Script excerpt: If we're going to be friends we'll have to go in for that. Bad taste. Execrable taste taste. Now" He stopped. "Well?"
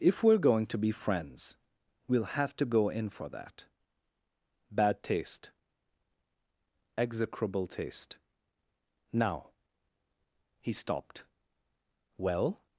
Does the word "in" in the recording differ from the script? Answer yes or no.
no